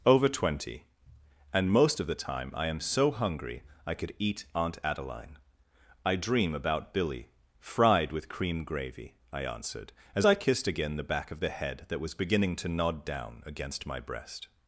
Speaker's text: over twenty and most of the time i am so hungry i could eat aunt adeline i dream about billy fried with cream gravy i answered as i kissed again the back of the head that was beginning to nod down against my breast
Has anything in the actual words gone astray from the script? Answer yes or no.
no